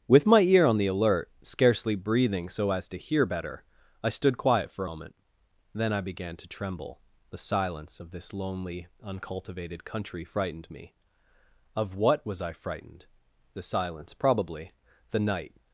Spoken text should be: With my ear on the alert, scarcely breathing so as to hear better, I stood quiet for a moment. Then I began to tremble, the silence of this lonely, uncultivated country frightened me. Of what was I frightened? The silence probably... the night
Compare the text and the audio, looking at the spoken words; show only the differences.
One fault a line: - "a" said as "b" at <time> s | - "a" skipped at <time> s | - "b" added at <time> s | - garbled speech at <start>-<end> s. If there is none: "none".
- "a" skipped at 4.8 s